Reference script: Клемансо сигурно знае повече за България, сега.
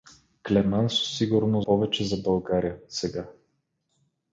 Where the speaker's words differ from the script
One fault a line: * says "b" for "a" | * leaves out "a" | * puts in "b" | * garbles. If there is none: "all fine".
* leaves out "знае"